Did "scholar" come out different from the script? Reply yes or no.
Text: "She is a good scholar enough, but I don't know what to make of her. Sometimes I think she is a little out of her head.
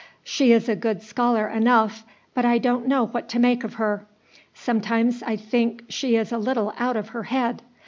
no